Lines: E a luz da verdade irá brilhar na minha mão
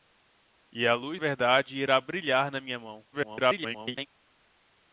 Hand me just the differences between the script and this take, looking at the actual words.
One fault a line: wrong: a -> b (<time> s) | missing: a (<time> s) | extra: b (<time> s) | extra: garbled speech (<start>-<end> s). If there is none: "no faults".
missing: da (1.2 s)
extra: garbled speech (3.1-4.1 s)